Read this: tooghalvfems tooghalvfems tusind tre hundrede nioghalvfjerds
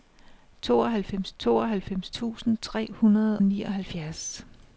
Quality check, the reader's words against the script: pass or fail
pass